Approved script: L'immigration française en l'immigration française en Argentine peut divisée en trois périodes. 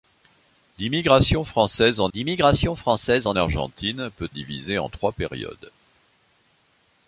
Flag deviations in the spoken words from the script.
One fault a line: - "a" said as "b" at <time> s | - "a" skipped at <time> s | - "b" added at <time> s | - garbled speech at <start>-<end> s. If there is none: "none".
none